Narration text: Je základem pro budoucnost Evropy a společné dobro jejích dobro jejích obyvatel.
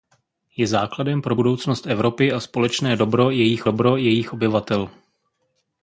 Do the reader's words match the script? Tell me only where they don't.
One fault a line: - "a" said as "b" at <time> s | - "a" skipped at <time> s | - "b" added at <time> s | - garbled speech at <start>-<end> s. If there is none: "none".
none